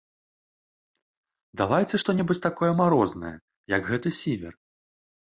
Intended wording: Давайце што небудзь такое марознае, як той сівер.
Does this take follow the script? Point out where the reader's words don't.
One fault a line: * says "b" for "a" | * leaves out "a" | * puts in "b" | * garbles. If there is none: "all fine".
* says "гэты" for "той"